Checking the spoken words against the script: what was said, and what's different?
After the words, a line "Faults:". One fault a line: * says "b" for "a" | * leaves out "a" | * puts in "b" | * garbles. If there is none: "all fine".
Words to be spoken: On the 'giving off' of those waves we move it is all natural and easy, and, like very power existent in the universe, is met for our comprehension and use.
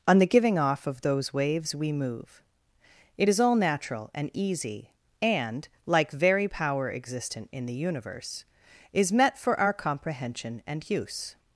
On the 'giving off' of those waves we move it is all natural and easy, and, like very power existent in the universe, is met for our comprehension and use.
Faults:
all fine